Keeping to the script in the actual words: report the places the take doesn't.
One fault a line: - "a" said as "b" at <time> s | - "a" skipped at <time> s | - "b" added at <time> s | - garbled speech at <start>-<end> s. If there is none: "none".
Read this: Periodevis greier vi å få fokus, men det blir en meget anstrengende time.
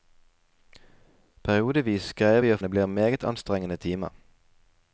- "få fokus men" skipped at 2.6 s